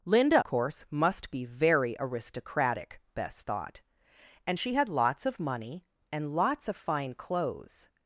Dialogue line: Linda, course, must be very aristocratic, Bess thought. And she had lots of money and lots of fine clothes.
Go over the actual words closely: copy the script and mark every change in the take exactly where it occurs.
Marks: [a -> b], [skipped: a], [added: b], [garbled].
Linda, course, must be very aristocratic, Bess thought. And she had lots of money and lots of fine clothes.